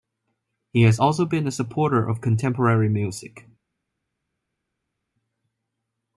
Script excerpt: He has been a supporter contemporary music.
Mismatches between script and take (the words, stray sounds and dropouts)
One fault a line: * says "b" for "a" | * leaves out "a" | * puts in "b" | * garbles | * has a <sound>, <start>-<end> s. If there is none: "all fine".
* puts in "also"
* puts in "of"